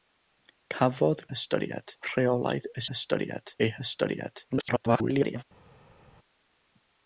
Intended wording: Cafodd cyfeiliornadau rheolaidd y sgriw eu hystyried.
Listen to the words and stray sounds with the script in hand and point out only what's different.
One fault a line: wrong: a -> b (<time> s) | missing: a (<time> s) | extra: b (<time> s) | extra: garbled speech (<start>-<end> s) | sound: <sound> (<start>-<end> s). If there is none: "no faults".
wrong: cyfeiliornadau -> hystyried (1.3 s)
wrong: sgriw -> hystyried (2.9 s)
extra: garbled speech (4.5-5.4 s)